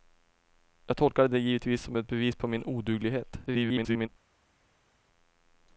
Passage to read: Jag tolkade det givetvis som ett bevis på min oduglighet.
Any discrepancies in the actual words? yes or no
yes